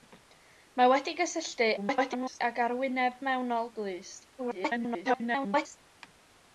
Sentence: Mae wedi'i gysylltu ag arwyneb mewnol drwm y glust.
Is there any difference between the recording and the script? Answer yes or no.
yes